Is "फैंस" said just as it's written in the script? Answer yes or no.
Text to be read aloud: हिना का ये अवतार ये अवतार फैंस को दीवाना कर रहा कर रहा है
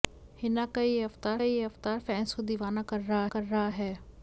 yes